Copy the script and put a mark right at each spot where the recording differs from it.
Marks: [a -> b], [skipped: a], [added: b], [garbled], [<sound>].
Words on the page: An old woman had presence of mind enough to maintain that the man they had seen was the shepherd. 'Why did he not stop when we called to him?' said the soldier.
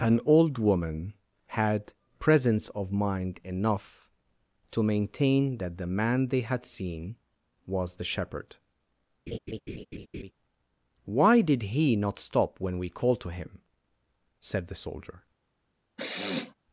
An old woman had presence of mind enough to maintain that the man they had seen was the shepherd. [laugh] 'Why did he not stop when we called to him?' said the soldier. [sniff]